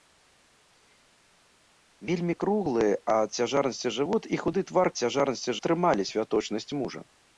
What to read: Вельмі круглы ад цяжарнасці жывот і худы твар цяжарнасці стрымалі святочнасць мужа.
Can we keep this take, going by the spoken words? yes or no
yes